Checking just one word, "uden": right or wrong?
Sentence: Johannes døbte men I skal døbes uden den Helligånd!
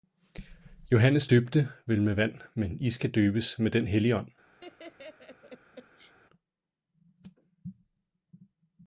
wrong